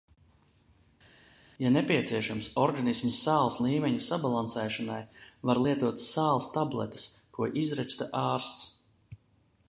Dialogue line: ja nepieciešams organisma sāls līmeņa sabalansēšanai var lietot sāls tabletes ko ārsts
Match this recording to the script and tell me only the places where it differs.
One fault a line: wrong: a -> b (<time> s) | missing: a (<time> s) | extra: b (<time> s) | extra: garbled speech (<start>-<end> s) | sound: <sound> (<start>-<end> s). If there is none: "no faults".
extra: izraksta (7.6 s)